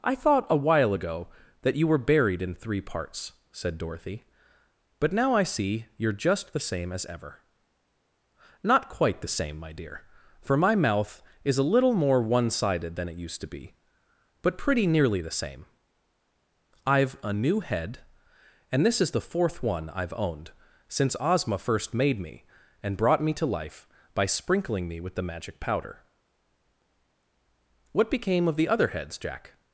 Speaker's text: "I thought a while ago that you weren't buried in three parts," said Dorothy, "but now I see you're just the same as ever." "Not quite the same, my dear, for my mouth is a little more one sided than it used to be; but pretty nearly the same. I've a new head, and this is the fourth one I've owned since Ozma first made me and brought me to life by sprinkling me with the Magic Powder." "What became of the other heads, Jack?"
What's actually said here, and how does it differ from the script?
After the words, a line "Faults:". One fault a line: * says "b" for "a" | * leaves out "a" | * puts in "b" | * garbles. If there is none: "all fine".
"I thought a while ago that you were buried in three parts," said Dorothy, "but now I see you're just the same as ever." "Not quite the same, my dear, for my mouth is a little more one sided than it used to be; but pretty nearly the same. I've a new head, and this is the fourth one I've owned since Ozma first made me and brought me to life by sprinkling me with the Magic Powder." "What became of the other heads, Jack?"
Faults:
* says "were" for "weren't"